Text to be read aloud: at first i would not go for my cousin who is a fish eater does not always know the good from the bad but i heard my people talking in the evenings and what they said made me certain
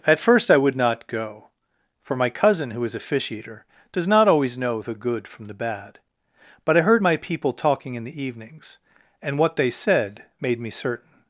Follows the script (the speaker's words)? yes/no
yes